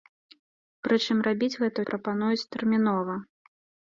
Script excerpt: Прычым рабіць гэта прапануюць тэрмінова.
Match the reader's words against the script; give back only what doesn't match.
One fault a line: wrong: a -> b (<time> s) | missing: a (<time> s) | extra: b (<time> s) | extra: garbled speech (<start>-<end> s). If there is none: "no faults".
no faults